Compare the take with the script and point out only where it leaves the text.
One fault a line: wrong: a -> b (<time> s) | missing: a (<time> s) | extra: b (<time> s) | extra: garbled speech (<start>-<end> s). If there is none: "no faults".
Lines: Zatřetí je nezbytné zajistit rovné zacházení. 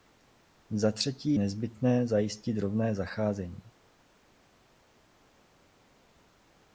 missing: je (1.4 s)